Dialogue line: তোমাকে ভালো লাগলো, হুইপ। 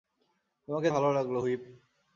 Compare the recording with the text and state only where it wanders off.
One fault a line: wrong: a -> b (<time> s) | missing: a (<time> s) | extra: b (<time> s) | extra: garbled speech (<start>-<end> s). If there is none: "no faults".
no faults